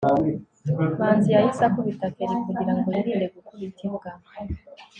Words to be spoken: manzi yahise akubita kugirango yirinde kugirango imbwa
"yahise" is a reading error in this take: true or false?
false